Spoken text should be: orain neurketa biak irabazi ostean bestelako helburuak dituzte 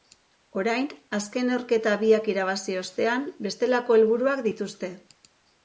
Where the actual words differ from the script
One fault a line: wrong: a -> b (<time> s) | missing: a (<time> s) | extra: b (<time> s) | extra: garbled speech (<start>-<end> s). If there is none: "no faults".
extra: azken (1.2 s)